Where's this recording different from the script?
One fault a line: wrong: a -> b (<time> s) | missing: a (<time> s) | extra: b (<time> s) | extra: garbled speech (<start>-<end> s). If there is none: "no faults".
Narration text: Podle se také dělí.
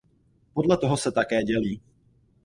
extra: toho (0.8 s)